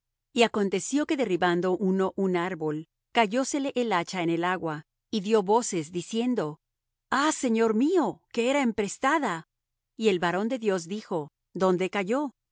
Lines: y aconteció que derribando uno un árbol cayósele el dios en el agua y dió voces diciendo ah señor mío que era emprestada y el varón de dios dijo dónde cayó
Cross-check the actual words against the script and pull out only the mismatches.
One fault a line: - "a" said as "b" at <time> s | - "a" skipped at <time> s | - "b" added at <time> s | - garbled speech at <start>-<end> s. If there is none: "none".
- "dios" said as "hacha" at 3.9 s